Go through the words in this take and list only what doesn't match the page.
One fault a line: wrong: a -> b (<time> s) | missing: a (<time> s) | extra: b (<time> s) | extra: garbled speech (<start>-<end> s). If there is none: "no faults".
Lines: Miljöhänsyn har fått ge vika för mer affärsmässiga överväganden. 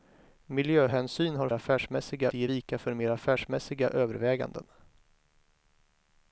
wrong: fått -> affärsmässiga (1.5 s)